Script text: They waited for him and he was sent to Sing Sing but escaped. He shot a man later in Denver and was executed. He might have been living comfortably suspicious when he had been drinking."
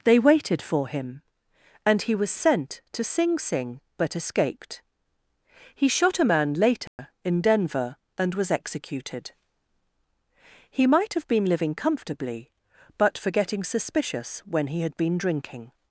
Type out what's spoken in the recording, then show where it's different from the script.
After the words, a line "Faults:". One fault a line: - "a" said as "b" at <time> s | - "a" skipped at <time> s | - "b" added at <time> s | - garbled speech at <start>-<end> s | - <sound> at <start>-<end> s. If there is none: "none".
They waited for him and he was sent to Sing Sing but escaped. He shot a man later in Denver and was executed. He might have been living comfortably but for getting suspicious when he had been drinking."
Faults:
- dropout at 6.9-7.0 s
- "but for getting" added at 13.0 s